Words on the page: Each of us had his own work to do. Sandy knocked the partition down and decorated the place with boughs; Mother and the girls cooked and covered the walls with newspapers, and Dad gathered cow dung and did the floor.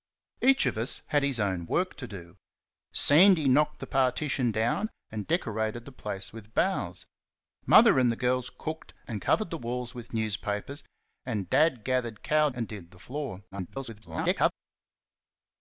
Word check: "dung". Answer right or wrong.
wrong